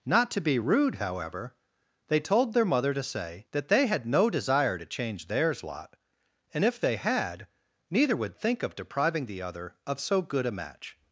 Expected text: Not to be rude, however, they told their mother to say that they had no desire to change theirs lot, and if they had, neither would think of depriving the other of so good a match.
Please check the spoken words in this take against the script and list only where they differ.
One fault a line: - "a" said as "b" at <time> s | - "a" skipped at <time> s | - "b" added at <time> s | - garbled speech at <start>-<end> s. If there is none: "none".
none